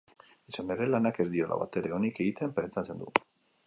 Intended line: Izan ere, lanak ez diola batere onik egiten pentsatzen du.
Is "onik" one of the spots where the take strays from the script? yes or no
no